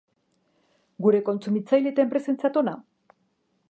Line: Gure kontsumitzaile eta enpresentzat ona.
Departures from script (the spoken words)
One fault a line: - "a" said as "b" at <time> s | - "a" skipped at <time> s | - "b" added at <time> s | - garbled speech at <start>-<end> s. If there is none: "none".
none